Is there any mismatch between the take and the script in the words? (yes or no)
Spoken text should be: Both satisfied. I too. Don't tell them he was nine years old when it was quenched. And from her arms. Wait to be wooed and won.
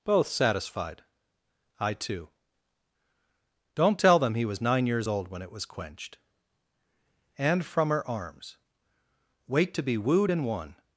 no